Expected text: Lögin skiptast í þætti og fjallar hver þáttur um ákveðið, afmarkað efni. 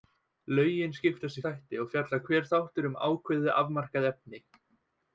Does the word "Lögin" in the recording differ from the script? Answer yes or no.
no